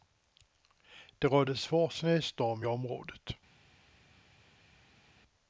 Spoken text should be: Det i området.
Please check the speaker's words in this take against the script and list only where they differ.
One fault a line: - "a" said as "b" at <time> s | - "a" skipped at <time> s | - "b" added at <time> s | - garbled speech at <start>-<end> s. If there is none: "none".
- "rådde svår snöstorm" added at 1.3 s